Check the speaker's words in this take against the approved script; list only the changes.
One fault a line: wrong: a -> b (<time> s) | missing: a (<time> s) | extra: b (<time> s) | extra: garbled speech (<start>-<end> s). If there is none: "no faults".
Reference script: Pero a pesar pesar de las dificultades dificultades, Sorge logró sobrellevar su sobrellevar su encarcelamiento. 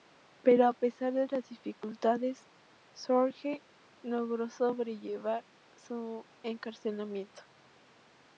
missing: pesar (1.1 s)
missing: dificultades (2.5 s)
missing: sobrellevar su (6.2 s)